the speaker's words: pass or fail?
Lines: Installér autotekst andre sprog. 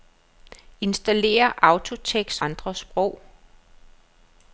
pass